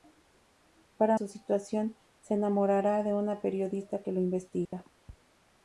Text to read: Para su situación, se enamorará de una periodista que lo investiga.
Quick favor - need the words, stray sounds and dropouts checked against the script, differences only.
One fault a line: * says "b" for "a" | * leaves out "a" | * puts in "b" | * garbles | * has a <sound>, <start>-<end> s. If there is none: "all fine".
* has a dropout, 4.6-4.7 s